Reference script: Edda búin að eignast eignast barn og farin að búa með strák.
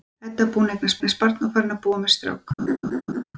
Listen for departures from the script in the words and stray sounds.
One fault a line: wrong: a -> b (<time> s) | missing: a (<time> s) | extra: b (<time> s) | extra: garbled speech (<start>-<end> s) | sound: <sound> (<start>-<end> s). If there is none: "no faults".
sound: laugh (2.6-3.2 s)